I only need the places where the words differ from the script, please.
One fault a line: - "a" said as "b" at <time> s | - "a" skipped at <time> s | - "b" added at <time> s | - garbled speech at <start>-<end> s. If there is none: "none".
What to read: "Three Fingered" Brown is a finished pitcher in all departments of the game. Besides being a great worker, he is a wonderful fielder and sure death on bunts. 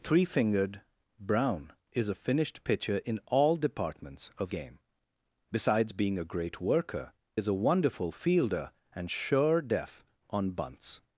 - "the" skipped at 4.5 s
- "he" skipped at 7.1 s